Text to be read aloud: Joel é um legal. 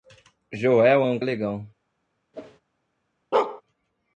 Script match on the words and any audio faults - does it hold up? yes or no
no